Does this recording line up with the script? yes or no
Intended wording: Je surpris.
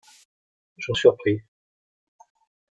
yes